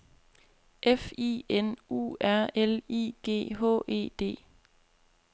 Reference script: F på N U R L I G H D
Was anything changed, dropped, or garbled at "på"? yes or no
yes